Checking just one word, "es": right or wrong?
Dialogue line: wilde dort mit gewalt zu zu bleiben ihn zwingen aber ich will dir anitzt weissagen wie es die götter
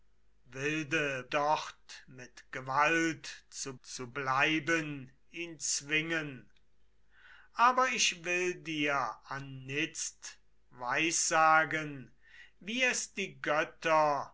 right